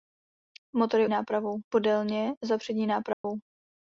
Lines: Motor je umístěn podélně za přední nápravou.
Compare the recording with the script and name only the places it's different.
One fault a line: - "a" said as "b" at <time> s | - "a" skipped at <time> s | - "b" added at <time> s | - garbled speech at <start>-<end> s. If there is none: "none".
- "umístěn" said as "nápravou" at 1.1 s